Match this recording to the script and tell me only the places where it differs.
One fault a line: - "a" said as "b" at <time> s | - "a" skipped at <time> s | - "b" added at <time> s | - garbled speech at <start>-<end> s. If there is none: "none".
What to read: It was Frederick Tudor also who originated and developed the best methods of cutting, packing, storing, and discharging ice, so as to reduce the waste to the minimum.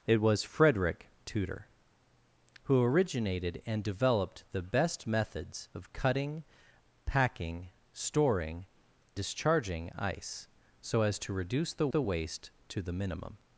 - "also" skipped at 1.7 s
- "and" skipped at 8.6 s
- "the" added at 11.9 s